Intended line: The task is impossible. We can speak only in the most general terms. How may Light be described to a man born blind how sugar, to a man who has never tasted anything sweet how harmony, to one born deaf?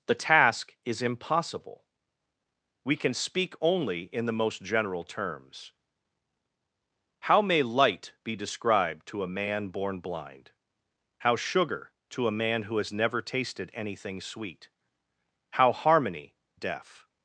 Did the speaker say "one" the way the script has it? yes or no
no